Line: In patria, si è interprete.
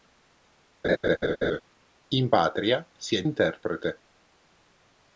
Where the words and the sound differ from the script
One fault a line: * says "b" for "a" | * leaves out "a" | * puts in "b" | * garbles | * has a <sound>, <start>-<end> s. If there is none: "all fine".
* has a laugh, 0.8-1.6 s